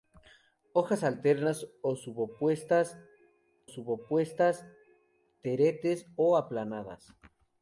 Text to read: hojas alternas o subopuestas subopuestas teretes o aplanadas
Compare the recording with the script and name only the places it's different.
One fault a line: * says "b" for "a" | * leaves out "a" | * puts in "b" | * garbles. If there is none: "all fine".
all fine